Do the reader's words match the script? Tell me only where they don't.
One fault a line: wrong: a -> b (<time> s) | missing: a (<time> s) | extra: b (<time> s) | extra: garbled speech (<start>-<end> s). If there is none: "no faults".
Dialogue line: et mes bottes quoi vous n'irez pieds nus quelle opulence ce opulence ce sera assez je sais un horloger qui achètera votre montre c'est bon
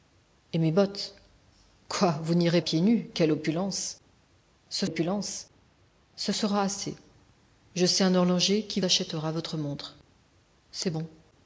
no faults